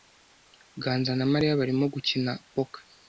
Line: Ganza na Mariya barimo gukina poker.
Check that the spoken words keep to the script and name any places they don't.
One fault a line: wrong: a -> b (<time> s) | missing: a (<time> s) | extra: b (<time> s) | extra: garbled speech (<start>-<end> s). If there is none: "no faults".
no faults